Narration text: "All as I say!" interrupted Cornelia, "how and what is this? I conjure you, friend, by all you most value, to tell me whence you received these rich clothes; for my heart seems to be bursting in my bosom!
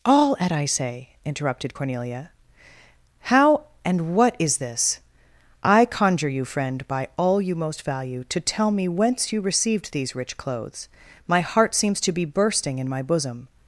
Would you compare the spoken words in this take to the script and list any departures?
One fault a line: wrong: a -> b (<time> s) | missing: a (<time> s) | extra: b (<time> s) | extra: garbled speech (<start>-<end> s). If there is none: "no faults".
wrong: as -> at (0.4 s)
missing: for (10.9 s)